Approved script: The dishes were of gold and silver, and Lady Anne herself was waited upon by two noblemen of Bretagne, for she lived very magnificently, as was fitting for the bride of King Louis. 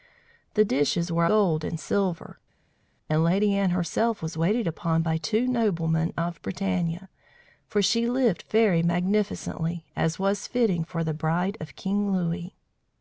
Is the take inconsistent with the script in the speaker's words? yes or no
yes